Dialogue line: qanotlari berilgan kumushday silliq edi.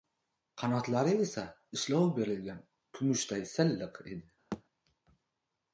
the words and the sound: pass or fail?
fail